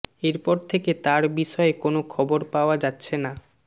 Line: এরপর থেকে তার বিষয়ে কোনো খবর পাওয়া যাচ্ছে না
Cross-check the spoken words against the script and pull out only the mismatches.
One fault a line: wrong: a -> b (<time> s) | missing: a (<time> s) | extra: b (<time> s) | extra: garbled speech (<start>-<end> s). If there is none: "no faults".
no faults